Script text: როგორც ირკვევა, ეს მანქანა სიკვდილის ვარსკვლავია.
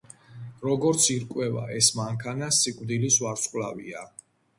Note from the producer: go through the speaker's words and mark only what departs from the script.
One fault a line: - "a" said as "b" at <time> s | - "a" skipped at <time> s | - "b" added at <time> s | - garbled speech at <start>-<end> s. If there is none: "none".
none